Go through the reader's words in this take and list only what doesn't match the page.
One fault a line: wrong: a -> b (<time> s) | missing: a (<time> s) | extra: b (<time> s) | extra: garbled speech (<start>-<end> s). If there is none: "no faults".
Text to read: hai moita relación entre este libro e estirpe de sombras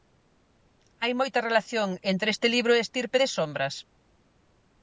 no faults